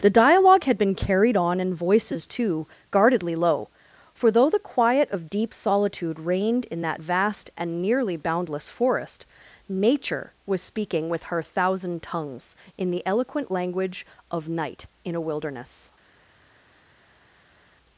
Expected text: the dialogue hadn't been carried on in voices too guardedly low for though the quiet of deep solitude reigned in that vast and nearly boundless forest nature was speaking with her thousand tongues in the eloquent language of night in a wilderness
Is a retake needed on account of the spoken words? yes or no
yes